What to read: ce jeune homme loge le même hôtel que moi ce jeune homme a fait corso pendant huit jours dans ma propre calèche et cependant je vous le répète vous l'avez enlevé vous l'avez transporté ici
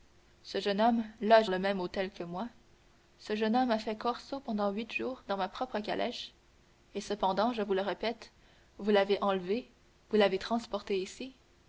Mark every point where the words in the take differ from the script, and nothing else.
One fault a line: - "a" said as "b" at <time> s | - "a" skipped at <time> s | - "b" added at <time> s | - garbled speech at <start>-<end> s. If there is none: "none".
none